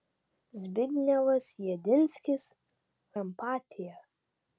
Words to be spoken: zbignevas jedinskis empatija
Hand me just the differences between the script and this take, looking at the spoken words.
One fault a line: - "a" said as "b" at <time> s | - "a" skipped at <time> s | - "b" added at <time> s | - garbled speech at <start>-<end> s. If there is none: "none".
none